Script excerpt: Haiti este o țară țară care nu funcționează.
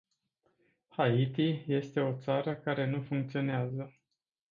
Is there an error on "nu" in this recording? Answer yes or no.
no